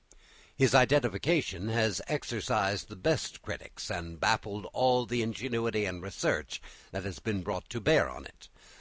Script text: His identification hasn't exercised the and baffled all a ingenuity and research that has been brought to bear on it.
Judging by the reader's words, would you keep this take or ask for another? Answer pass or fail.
fail